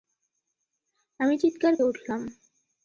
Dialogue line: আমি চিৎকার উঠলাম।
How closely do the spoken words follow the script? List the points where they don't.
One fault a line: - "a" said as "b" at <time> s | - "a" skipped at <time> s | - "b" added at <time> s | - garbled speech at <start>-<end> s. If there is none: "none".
none